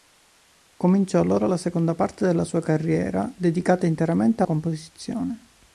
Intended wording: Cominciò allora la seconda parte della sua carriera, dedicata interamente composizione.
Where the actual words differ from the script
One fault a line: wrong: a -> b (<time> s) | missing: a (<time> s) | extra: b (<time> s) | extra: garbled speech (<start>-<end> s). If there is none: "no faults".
no faults